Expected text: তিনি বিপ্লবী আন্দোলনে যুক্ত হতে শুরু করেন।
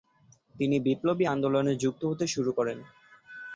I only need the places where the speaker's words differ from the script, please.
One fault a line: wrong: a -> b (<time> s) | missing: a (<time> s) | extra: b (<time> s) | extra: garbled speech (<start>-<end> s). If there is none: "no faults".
no faults